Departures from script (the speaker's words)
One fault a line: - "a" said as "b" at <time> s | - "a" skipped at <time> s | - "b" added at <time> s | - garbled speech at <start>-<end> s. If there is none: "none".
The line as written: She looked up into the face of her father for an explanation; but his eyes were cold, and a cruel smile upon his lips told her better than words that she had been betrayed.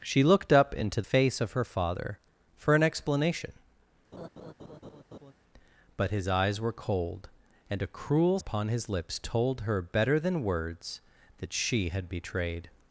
- "the" skipped at 1.0 s
- "smile" skipped at 8.4 s
- "been" skipped at 12.1 s